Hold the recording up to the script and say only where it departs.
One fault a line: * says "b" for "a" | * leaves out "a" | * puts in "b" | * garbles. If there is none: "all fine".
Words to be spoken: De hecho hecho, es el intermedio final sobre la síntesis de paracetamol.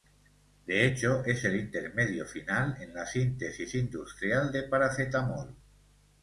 * leaves out "hecho"
* says "en" for "sobre"
* puts in "industrial"